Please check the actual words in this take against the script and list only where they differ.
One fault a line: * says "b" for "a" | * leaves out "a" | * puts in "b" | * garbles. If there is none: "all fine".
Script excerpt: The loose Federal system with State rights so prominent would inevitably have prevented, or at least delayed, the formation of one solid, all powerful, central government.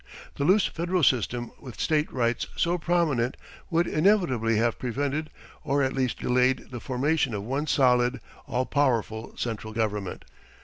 all fine